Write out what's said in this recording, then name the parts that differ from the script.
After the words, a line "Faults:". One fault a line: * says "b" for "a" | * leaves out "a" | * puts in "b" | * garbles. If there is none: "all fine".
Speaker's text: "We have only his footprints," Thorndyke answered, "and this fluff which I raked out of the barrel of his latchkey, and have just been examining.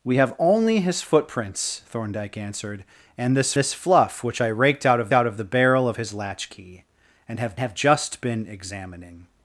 "We have only his footprints," Thorndyke answered, "and this this fluff which I raked out of out of the barrel of his latchkey, and have have just been examining.
Faults:
* puts in "this"
* puts in "out of"
* puts in "have"